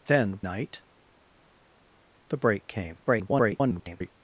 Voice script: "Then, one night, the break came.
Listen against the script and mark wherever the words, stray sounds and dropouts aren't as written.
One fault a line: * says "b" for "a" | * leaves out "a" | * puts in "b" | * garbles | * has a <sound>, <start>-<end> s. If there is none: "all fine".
* leaves out "one"
* garbles